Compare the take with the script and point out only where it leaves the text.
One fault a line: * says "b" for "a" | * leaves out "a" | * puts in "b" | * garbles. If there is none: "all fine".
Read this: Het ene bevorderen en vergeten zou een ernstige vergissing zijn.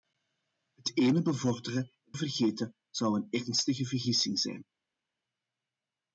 all fine